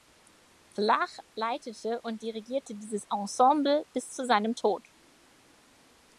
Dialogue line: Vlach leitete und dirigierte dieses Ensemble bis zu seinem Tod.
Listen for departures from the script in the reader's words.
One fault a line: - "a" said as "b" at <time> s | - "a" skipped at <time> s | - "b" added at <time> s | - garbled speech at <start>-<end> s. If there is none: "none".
none